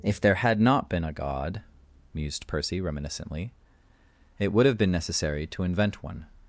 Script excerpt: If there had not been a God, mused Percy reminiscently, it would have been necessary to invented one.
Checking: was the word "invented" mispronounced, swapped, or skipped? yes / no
yes